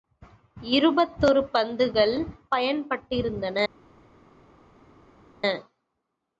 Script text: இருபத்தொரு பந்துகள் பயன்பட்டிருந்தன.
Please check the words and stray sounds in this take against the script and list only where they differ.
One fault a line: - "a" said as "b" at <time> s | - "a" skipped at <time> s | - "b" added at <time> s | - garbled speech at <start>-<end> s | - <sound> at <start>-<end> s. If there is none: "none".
none